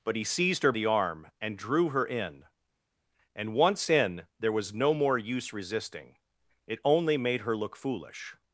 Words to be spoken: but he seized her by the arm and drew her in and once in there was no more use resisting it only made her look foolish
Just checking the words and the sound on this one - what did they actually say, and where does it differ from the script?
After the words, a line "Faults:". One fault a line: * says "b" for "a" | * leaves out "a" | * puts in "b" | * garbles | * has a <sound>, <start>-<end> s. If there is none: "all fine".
but he seized her the arm and drew her in and once in there was no more use resisting it only made her look foolish
Faults:
* leaves out "by"